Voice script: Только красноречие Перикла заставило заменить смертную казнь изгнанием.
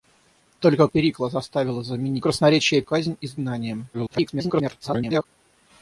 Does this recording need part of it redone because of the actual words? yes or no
yes